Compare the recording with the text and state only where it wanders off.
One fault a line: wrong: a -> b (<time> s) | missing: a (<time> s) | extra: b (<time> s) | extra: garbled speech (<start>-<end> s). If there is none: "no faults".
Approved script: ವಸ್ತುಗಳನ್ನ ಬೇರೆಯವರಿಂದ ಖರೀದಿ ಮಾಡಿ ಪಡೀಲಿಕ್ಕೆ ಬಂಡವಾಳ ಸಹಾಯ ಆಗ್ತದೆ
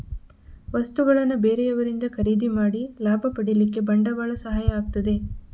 extra: ಲಾಭ (3.0 s)